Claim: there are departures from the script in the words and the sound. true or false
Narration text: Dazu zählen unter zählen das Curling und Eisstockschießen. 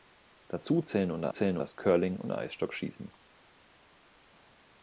false